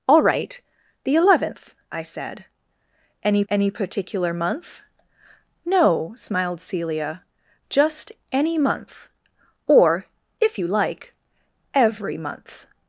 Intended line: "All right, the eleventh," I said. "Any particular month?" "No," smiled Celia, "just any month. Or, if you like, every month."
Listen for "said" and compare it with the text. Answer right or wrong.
right